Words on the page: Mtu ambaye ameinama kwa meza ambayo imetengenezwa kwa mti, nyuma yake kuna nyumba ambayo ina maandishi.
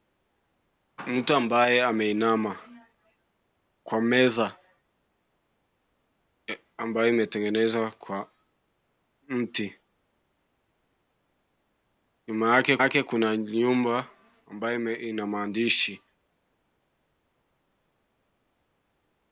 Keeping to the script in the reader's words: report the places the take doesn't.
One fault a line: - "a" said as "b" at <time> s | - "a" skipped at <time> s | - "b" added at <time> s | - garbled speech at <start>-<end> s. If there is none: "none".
- "yake" added at 12.8 s